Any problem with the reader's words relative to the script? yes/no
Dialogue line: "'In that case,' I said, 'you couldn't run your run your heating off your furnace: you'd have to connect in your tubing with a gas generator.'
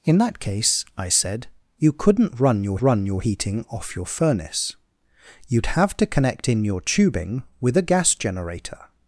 no